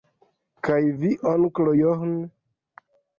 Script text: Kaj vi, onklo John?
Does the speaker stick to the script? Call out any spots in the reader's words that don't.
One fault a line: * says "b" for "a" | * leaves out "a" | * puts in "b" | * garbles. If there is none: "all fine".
all fine